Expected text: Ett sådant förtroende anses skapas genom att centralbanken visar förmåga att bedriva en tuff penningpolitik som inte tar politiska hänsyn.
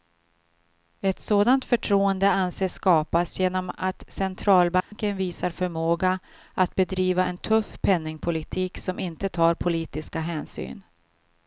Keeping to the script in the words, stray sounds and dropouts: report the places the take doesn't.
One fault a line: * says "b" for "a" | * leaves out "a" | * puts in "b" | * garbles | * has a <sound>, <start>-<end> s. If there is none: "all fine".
* has a dropout, 4.8-4.9 s